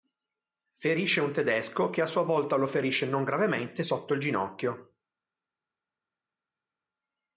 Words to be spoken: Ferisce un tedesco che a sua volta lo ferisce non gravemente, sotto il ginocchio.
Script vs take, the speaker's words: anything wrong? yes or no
no